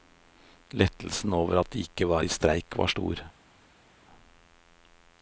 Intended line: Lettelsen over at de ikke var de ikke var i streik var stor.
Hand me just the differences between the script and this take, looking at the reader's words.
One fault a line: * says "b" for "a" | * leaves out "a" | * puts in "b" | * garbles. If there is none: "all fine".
* leaves out "de ikke var"